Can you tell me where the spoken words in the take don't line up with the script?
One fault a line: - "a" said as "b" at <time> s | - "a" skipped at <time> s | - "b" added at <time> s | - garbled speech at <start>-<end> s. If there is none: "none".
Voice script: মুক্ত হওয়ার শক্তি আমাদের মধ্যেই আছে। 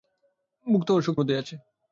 - "আমাদের" skipped at 1.2 s